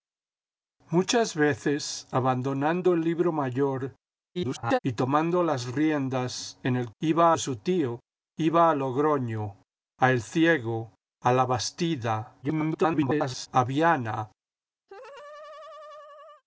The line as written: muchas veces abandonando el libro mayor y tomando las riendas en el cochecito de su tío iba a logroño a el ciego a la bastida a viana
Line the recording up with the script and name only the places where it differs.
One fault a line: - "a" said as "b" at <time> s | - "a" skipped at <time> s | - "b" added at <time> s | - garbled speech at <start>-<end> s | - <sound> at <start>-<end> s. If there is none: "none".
- garbled speech at 4.3-4.8 s
- "cochecito" said as "iba" at 7.0 s
- garbled speech at 12.4-13.5 s
- laugh at 14.9-16.4 s